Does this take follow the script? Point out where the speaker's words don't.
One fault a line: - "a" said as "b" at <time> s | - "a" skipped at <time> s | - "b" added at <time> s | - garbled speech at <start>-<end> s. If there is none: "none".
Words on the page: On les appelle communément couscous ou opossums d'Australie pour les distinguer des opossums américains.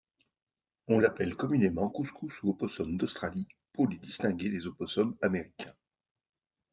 - "les" skipped at 1.0 s